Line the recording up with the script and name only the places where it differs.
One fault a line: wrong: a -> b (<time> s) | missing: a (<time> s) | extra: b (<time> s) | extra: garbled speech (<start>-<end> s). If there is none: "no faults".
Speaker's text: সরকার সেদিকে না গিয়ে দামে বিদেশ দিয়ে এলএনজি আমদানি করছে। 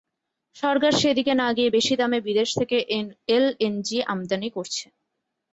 extra: বেশি (1.7 s)
wrong: দিয়ে -> থেকে (2.6 s)